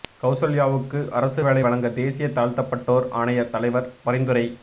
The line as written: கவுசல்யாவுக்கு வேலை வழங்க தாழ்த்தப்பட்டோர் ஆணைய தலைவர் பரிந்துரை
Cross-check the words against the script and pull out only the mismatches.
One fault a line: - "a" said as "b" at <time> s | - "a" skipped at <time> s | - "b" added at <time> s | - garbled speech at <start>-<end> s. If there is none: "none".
- "அரசு" added at 1.1 s
- "தேசிய" added at 1.9 s